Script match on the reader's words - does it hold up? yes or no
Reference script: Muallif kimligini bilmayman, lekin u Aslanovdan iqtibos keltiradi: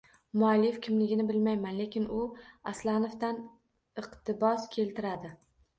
yes